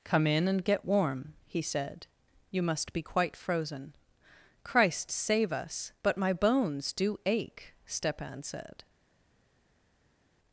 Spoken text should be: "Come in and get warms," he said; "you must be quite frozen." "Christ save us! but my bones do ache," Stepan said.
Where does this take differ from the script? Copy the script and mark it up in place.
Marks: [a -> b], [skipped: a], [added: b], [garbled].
"Come in and get [warms," -> warm] he said; "you must be quite frozen." "Christ save us! but my bones do ache," Stepan said.